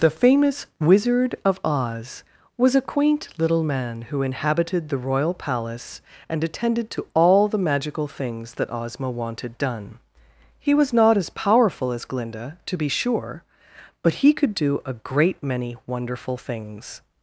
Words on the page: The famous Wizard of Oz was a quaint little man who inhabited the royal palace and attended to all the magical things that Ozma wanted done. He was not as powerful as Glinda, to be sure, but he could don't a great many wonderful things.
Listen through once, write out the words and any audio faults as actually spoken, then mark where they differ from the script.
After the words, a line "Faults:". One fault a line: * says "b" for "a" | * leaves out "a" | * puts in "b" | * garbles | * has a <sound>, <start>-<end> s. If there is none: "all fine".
The famous Wizard of Oz was a quaint little man who inhabited the royal palace and attended to all the magical things that Ozma wanted done. He was not as powerful as Glinda, to be sure, but he could do a great many wonderful things.
Faults:
* says "do" for "don't"